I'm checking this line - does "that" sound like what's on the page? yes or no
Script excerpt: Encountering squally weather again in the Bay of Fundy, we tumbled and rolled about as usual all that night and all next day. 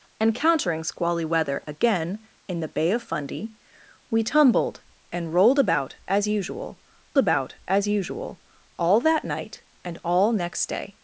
yes